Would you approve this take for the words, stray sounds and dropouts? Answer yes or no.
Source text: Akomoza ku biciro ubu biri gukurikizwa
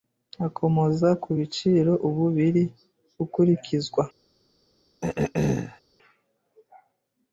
no